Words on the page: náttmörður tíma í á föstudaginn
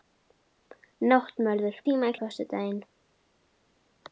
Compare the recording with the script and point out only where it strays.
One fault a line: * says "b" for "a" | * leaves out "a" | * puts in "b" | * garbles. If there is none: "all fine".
all fine